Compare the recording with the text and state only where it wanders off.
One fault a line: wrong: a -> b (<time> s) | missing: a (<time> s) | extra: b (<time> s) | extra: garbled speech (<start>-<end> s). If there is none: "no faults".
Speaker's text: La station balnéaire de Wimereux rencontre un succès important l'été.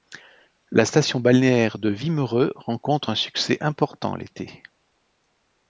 no faults